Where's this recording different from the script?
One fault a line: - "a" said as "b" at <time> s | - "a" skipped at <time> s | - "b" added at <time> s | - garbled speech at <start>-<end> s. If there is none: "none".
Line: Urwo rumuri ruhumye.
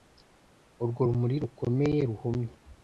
- "rukomeye" added at 1.4 s